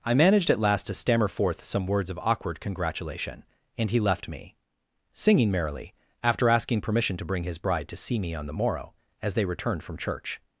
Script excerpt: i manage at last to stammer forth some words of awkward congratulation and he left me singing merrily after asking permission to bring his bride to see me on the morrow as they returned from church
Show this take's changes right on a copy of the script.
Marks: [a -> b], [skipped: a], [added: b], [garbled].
i [manage -> managed] at last to stammer forth some words of awkward congratulation and he left me singing merrily after asking permission to bring his bride to see me on the morrow as they returned from church